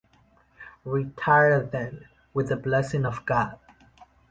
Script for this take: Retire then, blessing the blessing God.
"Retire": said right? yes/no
yes